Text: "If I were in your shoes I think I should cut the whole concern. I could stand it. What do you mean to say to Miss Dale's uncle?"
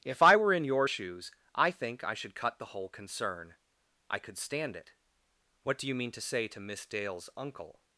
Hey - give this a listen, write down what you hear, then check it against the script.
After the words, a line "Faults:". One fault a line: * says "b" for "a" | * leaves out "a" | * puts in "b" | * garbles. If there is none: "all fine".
"If I were in your shoes I think I should cut the whole concern. I could stand it. What do you mean to say to Miss Dale's uncle?"
Faults:
all fine